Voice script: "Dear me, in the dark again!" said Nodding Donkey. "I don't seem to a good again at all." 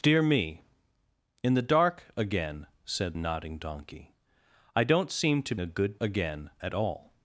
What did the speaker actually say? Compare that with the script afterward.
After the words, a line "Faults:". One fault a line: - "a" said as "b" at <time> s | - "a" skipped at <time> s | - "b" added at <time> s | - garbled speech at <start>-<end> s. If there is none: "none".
"Dear me, in the dark again!" said Nodding Donkey. "I don't seem to a good again at all."
Faults:
none